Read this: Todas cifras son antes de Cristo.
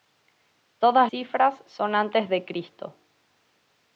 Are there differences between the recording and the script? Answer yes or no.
no